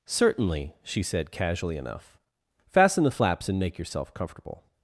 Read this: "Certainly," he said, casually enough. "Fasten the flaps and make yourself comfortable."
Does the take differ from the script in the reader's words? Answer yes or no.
yes